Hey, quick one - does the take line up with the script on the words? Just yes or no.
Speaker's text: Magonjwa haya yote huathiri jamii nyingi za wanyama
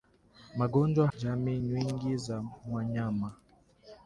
no